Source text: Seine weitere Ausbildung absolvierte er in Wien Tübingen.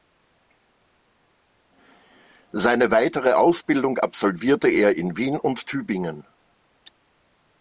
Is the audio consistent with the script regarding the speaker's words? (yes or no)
no